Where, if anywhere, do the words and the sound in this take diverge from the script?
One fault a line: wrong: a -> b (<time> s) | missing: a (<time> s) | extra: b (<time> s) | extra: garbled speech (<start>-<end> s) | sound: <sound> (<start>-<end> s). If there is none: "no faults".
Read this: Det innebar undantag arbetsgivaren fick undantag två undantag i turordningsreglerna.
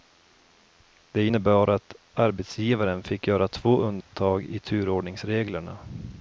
wrong: undantag -> att (1.7 s)
wrong: undantag -> göra (3.3 s)
sound: dropout (4.0-4.1 s)